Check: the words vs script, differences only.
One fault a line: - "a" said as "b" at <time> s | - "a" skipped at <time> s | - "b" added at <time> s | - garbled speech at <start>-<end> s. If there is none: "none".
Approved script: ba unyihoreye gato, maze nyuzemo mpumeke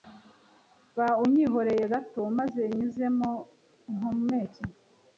none